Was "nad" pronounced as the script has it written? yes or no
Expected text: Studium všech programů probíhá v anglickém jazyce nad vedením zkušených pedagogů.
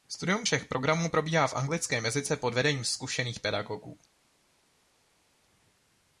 no